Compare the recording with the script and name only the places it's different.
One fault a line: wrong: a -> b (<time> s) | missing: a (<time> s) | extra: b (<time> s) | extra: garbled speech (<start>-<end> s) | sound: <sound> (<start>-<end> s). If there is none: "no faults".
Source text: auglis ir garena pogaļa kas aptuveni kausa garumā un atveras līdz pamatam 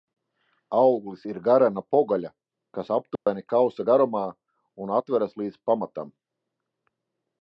sound: dropout (3.2-3.3 s)